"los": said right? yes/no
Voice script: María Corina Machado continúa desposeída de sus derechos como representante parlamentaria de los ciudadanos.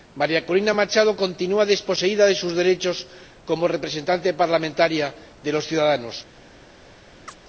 yes